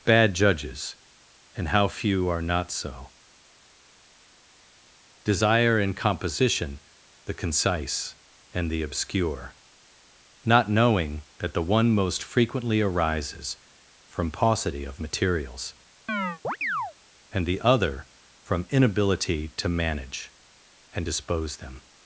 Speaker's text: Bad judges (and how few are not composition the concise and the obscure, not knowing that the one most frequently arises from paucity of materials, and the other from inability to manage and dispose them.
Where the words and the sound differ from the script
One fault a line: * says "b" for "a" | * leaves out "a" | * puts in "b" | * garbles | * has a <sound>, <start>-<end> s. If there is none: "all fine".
* puts in "so desire in"
* has a chirp, 16.1-16.9 s